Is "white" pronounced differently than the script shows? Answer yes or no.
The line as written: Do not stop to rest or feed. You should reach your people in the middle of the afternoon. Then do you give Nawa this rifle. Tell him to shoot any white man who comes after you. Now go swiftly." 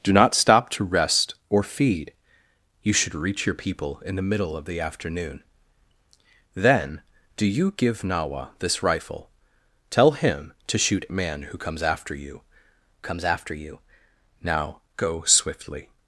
yes